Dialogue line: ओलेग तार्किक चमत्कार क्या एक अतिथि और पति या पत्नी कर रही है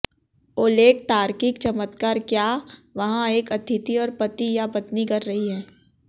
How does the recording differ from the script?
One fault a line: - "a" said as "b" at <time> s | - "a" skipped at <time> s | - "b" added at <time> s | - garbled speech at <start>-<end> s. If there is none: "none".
- "वहाँ" added at 3.0 s